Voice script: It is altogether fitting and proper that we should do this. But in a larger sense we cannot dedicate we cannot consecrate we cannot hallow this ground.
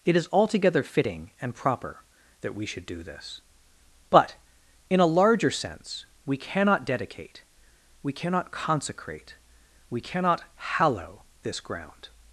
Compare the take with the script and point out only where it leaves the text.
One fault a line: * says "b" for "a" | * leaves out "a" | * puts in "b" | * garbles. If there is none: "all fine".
all fine